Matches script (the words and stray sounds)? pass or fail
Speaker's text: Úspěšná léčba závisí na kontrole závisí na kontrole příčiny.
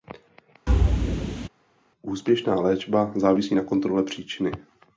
fail